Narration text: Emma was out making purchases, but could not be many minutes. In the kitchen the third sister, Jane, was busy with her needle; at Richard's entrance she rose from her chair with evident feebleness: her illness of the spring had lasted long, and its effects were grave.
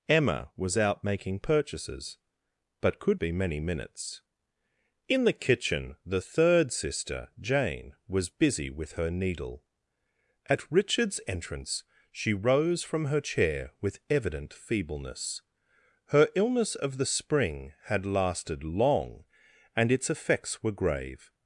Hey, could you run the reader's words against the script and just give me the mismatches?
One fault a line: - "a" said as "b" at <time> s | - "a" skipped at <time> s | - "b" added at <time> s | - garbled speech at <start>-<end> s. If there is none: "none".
- "not" skipped at 3.2 s